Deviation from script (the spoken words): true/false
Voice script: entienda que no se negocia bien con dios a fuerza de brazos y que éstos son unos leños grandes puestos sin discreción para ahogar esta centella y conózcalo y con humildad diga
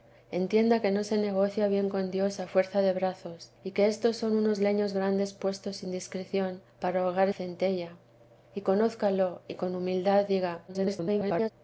true